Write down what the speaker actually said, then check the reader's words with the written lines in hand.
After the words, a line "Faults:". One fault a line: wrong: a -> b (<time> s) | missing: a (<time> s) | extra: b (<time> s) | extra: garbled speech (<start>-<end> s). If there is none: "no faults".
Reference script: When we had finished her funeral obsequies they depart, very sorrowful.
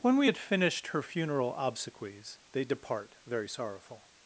When we had finished her funeral obsequies they depart, very sorrowful.
Faults:
no faults